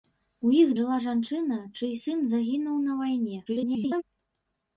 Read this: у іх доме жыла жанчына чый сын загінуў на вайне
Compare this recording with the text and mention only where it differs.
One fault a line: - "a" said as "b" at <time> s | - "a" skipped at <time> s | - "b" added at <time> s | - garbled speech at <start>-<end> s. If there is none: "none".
- "доме" skipped at 0.7 s
- garbled speech at 3.5-4.0 s